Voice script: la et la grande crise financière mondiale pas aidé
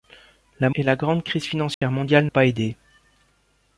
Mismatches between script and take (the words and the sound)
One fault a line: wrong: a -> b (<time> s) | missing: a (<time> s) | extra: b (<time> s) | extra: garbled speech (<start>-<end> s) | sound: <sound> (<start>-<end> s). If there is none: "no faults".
sound: dropout (1.7-1.8 s)